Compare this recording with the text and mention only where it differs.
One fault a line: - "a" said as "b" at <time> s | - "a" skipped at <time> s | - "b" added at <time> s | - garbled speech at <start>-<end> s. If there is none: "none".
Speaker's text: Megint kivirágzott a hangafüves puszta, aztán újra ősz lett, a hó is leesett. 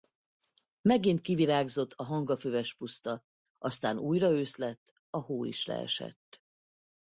none